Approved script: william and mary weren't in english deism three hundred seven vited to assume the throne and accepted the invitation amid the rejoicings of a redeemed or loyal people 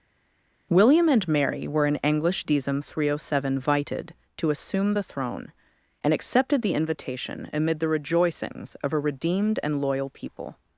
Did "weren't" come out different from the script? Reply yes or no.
yes